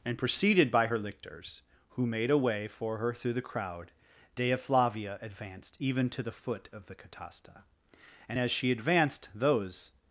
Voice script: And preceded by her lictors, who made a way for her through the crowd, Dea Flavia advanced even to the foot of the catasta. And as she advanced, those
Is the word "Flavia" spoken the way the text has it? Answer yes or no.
yes